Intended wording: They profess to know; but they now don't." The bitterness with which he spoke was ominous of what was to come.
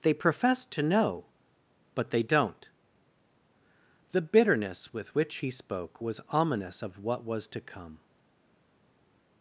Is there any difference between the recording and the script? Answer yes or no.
yes